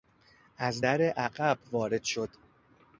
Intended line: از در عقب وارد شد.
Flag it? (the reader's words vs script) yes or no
no